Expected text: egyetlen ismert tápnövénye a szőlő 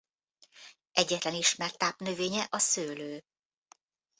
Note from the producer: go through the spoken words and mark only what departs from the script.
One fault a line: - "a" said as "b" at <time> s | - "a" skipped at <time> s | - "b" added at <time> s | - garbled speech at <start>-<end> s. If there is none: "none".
none